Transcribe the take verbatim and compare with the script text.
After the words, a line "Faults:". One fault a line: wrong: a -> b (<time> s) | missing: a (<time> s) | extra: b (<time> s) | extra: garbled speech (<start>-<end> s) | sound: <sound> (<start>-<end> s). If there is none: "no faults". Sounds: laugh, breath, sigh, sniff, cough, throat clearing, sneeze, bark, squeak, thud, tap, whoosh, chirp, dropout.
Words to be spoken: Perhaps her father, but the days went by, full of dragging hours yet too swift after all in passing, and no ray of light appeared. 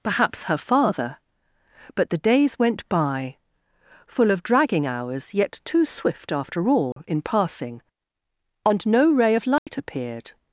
Perhaps her father, but the days went by, full of dragging hours yet too swift after all in passing, and no ray of light appeared.
Faults:
sound: dropout (6.9-7.0 s)
sound: dropout (9.6-9.7 s)